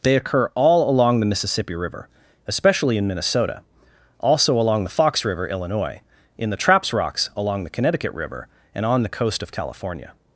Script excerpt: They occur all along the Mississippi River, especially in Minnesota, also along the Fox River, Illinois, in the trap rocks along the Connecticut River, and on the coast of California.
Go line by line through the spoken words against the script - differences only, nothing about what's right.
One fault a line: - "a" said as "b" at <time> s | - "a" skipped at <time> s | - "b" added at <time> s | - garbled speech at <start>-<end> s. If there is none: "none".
- "trap" said as "traps" at 6.6 s